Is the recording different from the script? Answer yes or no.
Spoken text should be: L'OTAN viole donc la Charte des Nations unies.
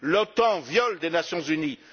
yes